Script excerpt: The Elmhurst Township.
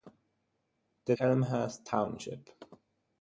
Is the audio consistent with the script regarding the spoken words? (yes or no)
yes